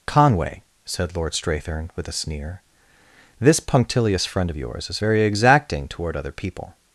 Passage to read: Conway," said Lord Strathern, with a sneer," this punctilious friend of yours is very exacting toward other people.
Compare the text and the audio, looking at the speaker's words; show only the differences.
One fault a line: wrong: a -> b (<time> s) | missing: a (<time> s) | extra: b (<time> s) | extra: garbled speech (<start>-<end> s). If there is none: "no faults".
no faults